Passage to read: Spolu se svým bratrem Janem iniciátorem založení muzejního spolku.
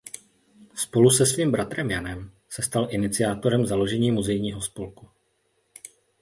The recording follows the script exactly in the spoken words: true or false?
false